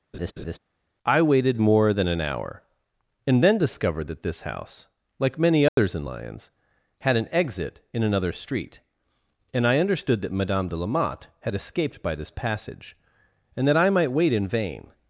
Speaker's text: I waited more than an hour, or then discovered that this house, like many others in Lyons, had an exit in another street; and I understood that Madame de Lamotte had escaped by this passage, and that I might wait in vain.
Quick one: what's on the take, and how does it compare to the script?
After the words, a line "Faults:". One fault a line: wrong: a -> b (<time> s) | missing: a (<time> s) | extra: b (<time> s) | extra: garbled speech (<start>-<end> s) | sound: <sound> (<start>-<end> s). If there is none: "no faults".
I waited more than an hour, and then discovered that this house, like many others in Lyons, had an exit in another street; and I understood that Madame de Lamotte had escaped by this passage, and that I might wait in vain.
Faults:
sound: laugh (0.1-0.6 s)
wrong: or -> and (3.3 s)
sound: dropout (5.7-5.8 s)